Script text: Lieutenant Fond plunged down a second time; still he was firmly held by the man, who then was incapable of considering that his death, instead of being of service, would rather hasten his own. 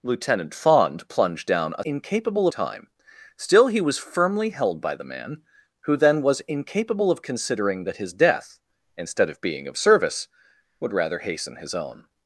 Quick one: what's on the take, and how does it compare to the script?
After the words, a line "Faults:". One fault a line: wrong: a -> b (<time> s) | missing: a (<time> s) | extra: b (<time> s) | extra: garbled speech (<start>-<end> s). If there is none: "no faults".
Lieutenant Fond plunged down a incapable time; still he was firmly held by the man, who then was incapable of considering that his death, instead of being of service, would rather hasten his own.
Faults:
wrong: second -> incapable (1.8 s)